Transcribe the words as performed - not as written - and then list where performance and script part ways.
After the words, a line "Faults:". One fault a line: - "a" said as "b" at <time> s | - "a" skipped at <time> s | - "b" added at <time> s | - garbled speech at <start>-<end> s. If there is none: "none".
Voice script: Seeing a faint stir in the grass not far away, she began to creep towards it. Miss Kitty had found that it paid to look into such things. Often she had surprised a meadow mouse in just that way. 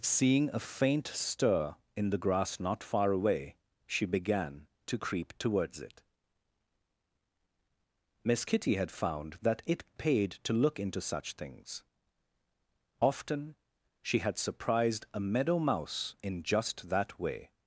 Seeing a faint stir in the grass not far away, she began to creep towards it. Miss Kitty had found that it paid to look into such things. Often she had surprised a meadow mouse in just that way.
Faults:
none